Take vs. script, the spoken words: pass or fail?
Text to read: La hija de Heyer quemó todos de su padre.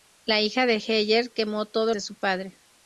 pass